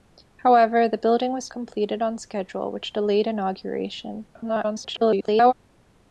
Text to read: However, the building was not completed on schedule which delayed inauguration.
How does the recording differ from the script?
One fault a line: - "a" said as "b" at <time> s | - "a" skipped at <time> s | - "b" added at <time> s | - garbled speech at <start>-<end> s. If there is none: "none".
- "not" skipped at 1.5 s
- garbled speech at 4.3-5.5 s